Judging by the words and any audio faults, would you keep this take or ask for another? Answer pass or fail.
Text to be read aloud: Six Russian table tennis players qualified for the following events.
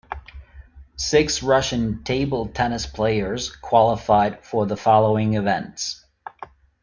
pass